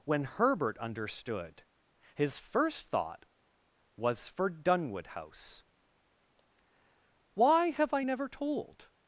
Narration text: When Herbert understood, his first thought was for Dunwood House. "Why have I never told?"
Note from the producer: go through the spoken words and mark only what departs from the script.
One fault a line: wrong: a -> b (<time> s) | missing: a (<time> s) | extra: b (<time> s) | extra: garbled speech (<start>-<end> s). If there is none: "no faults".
no faults